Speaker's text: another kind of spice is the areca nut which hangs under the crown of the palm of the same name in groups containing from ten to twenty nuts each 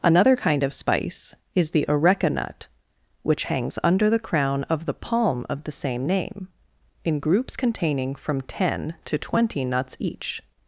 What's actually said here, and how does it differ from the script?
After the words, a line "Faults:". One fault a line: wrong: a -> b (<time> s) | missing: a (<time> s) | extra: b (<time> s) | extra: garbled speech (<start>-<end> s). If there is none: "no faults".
another kind of spice is the areca nut which hangs under the crown of the palm of the same name in groups containing from ten to twenty nuts each
Faults:
no faults